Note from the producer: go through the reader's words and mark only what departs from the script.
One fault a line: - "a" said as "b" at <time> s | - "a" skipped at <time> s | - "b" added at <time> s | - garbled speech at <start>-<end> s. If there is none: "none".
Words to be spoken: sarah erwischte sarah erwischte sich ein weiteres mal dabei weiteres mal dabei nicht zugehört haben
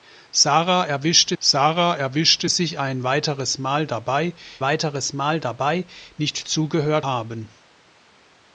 none